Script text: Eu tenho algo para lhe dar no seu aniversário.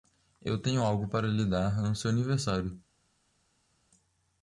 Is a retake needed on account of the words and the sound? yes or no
no